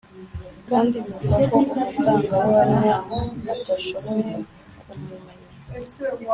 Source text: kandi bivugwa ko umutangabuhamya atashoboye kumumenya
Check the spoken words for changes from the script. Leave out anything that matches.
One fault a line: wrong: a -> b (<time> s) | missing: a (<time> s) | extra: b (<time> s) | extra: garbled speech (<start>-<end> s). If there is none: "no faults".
no faults